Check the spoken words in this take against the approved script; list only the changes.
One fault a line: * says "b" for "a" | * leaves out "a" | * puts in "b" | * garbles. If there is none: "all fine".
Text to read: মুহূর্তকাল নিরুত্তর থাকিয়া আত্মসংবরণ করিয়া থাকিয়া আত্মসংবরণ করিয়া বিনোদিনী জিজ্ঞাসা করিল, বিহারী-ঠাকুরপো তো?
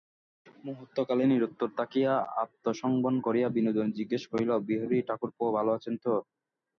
* leaves out "থাকিয়া আত্মসংবরণ করিয়া"
* puts in "ভালো আছেন"